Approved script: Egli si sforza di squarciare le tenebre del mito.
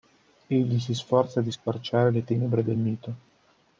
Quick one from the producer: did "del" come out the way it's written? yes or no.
yes